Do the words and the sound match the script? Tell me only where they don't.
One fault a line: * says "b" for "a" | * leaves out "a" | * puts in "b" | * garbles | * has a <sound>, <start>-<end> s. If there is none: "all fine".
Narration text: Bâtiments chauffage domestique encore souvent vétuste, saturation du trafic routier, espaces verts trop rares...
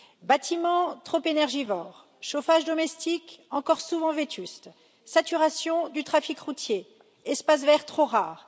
* puts in "trop énergivores"